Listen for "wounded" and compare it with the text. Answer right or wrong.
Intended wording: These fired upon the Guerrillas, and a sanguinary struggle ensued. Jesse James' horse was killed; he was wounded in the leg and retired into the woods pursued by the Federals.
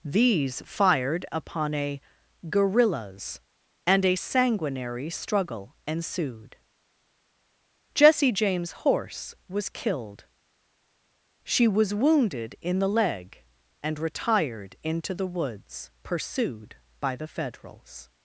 right